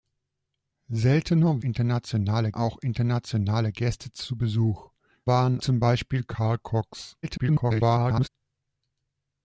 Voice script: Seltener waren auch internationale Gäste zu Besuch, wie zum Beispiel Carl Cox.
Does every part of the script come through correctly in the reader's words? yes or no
no